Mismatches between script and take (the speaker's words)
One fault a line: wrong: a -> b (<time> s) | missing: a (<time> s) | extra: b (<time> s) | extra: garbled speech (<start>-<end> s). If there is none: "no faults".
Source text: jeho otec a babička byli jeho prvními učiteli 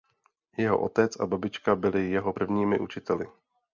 no faults